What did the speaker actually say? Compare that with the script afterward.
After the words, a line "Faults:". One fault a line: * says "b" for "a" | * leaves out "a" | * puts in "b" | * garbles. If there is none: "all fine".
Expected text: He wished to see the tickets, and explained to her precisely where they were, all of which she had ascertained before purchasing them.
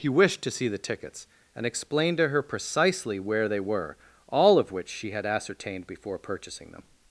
He wished to see the tickets, and explained to her precisely where they were, all of which she had ascertained before purchasing them.
Faults:
all fine